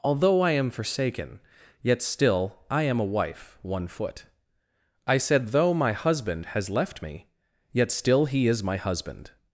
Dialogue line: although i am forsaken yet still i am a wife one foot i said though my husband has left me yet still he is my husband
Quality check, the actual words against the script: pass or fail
pass